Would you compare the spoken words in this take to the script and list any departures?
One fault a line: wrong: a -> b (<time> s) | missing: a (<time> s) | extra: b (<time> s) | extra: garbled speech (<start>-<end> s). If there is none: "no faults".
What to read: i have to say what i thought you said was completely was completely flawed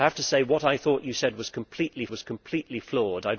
no faults